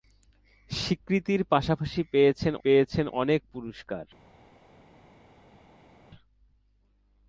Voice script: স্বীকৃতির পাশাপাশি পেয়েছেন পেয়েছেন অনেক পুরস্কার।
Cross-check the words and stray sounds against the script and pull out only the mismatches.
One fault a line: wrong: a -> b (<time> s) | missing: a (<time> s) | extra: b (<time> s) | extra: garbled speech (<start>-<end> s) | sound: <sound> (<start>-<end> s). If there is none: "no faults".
no faults